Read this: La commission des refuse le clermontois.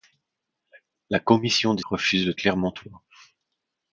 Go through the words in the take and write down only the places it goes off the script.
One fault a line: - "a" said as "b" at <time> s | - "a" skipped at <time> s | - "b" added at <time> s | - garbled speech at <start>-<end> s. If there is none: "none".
none